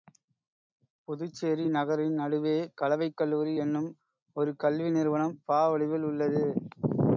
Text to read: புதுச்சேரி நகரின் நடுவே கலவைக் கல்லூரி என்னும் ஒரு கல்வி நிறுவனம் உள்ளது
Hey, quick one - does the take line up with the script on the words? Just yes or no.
no